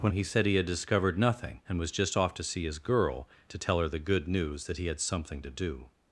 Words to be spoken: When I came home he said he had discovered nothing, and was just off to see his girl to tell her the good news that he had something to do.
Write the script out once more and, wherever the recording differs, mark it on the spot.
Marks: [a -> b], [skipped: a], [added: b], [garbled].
When [skipped: I came home] he said he had discovered nothing, and was just off to see his girl to tell her the good news that he had something to do.